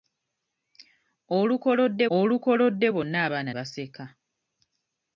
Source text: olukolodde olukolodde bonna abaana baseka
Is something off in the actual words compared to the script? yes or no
no